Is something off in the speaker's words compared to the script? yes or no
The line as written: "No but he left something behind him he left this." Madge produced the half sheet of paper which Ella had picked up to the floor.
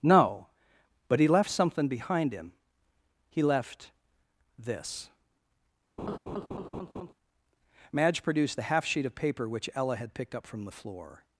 yes